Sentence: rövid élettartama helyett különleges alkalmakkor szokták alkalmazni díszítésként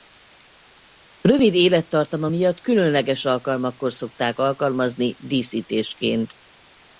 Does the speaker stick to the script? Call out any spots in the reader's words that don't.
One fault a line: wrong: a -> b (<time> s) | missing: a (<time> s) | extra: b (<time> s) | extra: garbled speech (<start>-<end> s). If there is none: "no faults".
wrong: helyett -> miatt (2.3 s)